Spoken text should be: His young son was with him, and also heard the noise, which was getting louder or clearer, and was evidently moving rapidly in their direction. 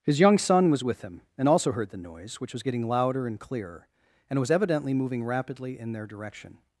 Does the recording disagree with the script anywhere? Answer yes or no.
yes